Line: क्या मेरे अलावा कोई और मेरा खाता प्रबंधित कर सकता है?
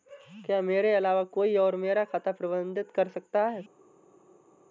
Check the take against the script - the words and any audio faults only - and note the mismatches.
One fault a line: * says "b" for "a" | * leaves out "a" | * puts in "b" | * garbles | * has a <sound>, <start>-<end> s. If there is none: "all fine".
all fine